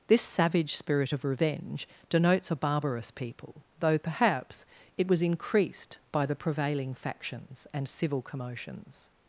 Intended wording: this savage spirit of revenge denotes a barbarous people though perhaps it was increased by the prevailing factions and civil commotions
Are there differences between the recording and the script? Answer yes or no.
no